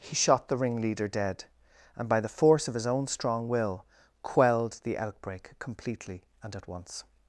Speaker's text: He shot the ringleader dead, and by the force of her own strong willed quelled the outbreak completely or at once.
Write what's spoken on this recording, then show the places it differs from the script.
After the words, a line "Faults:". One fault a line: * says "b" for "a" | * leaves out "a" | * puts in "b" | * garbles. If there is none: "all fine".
He shot the ringleader dead, and by the force of his own strong will quelled the outbreak completely and at once.
Faults:
* says "his" for "her"
* says "will" for "willed"
* says "and" for "or"